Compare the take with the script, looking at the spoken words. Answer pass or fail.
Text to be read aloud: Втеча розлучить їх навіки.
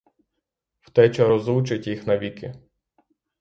pass